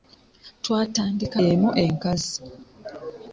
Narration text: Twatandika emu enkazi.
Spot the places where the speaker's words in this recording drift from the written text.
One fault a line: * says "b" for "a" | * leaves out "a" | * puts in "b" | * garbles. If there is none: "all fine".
all fine